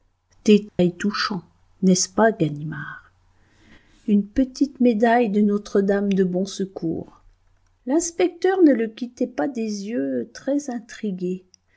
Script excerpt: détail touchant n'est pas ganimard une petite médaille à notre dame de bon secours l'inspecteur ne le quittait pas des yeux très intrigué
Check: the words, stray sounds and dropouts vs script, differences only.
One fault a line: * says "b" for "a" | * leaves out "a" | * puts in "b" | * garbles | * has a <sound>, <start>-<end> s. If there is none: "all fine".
* has a dropout, 0.7-0.8 s
* puts in "ce"
* says "de" for "à"